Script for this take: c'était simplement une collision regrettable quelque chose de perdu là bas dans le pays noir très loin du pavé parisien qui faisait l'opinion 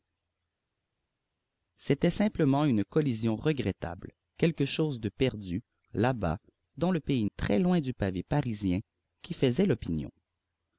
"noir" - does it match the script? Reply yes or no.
no